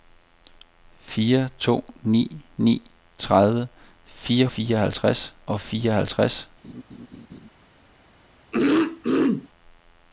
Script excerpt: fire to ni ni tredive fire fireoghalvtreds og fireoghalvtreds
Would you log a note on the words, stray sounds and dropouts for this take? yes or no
yes